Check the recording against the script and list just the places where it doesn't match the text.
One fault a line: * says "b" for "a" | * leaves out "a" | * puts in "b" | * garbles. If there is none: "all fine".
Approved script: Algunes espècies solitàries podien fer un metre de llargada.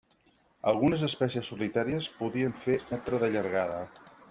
* leaves out "un"